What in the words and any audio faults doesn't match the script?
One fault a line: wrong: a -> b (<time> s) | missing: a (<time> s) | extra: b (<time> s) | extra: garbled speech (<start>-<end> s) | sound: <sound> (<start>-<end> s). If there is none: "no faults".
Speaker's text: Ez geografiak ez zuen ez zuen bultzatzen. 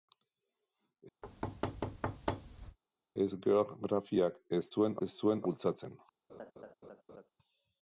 sound: thud (1.2-2.8 s)
sound: laugh (6.3-7.3 s)